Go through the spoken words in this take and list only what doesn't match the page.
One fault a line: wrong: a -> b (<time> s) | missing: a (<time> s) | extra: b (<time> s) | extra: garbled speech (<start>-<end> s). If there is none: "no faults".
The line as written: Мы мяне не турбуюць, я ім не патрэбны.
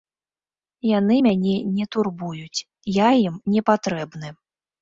wrong: Мы -> Яны (1.0 s)